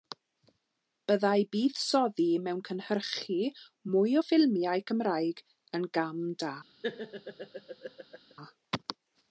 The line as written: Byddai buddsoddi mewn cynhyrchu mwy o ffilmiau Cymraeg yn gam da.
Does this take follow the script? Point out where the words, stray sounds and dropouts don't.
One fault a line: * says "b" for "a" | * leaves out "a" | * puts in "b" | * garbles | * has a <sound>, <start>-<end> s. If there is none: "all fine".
* has a laugh, 6.8-8.3 s